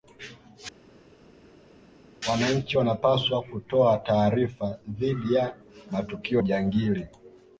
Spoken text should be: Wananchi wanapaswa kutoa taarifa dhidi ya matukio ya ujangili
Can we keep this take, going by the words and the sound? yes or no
no